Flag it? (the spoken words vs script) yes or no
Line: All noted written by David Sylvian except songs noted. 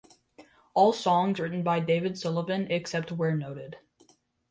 yes